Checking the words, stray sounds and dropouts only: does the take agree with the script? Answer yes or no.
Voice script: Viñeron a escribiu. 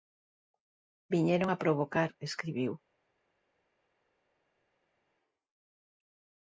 no